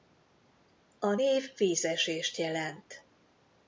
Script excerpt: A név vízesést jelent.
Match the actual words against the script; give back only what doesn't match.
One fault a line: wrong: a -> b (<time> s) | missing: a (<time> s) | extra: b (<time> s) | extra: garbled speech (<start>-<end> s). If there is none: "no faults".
no faults